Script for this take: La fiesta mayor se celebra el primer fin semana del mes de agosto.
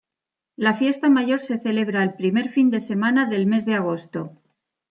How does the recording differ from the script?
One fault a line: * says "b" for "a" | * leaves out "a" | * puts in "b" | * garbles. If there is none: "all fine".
* puts in "de"